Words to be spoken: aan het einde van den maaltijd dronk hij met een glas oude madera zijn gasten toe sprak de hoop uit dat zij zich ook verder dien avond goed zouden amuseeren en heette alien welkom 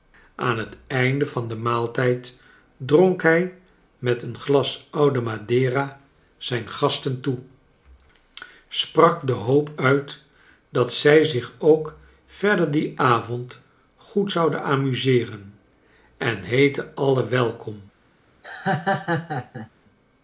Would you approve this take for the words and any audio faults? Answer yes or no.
no